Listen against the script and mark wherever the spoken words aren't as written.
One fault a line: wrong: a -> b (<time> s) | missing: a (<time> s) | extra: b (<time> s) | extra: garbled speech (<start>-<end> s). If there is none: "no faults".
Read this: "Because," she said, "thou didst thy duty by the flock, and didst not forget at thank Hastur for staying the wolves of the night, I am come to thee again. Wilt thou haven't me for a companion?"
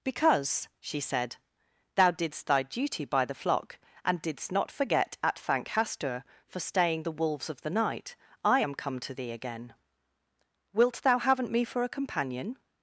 no faults